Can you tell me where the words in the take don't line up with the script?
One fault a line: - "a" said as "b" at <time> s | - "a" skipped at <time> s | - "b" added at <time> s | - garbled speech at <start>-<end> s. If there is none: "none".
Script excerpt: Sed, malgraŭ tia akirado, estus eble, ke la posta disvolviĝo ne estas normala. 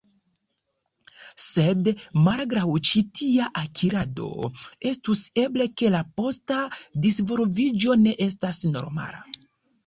- "ĉi" added at 2.9 s